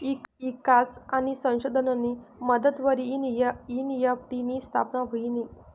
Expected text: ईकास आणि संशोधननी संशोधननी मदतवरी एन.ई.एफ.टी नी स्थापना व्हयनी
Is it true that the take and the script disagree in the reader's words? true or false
true